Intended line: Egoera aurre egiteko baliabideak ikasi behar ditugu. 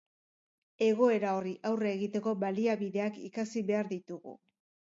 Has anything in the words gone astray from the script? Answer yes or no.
yes